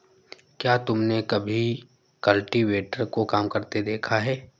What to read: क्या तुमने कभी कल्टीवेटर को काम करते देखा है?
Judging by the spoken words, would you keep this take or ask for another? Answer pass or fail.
pass